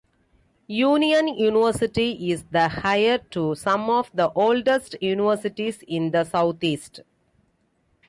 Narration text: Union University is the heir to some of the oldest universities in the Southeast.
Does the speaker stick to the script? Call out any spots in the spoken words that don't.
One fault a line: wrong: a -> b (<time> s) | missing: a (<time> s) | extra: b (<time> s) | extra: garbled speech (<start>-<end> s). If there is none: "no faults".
no faults